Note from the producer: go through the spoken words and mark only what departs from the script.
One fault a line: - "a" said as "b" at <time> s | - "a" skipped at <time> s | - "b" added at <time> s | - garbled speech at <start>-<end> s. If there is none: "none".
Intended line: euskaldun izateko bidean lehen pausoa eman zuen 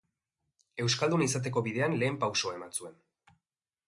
none